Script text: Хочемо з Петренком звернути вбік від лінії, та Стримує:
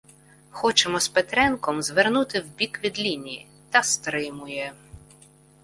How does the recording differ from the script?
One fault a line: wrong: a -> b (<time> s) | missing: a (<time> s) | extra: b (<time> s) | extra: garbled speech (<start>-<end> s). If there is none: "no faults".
no faults